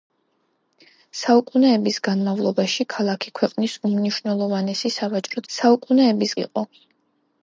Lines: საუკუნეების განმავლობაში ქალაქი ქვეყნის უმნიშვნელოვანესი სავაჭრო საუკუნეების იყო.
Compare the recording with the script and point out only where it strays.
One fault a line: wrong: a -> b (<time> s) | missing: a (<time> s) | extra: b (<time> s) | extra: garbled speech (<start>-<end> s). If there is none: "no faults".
no faults